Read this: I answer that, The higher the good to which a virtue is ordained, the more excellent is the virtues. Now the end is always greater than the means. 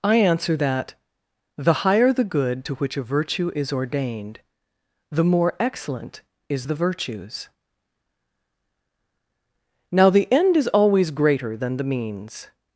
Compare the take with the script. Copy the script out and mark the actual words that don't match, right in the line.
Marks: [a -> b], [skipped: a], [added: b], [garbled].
I answer that, The higher the good to which a virtue is ordained, the more excellent is the virtues. Now the end is always greater than the means.